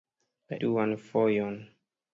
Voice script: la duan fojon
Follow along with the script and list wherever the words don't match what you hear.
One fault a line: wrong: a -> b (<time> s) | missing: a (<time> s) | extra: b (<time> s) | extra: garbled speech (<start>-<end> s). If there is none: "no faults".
no faults